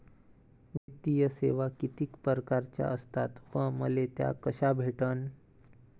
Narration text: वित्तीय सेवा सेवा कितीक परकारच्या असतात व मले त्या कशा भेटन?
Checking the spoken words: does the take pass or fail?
fail